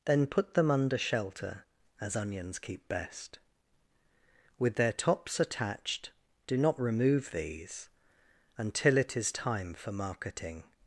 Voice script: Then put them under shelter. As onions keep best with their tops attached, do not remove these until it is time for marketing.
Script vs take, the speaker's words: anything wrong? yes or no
no